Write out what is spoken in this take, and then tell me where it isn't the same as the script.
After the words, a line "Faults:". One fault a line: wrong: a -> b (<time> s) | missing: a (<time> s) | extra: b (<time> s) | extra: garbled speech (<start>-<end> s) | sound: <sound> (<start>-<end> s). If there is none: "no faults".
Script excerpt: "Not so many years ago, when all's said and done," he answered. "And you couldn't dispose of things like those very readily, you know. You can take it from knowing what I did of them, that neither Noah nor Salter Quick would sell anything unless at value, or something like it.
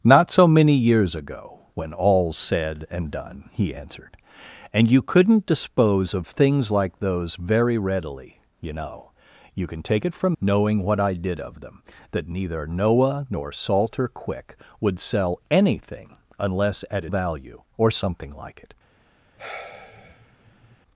"Not so many years ago, when all's said and done," he answered. "And you couldn't dispose of things like those very readily, you know. You can take it from knowing what I did of them, that neither Noah nor Salter Quick would sell anything unless at value, or something like it.
Faults:
sound: sigh (19.4-20.8 s)